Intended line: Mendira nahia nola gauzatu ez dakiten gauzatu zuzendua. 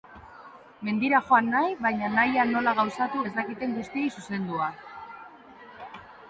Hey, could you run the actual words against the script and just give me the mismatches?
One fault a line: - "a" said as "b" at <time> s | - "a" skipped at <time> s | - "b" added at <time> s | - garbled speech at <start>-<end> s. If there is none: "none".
- "joan nahi baina" added at 1.3 s
- "gauzatu" said as "guztiei" at 3.8 s